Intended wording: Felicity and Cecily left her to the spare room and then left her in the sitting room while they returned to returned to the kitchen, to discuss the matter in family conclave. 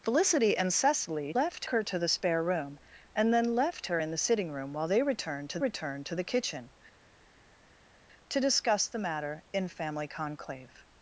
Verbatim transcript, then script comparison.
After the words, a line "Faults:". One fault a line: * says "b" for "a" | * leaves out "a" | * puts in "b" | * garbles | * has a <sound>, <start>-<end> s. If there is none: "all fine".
Felicity and Cecily left her to the spare room and then left her in the sitting room while they returned to returned to the kitchen, to discuss the matter in family conclave.
Faults:
all fine